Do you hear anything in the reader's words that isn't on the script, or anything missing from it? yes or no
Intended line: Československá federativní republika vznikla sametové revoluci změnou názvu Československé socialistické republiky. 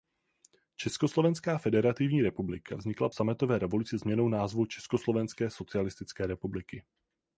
no